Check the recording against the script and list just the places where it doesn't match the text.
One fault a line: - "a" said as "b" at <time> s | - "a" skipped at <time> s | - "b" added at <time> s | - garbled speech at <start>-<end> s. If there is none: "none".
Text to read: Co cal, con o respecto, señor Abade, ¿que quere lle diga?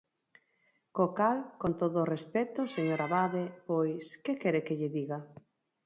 - "todo" added at 1.8 s
- "pois" added at 3.7 s
- "que" added at 4.7 s